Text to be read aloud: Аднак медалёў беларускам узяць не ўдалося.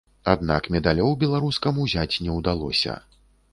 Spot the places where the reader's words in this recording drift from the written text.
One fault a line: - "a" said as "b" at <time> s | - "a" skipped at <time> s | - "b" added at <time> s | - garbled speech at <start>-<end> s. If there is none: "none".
none